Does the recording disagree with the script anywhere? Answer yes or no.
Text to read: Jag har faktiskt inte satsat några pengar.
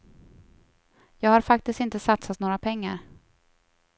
no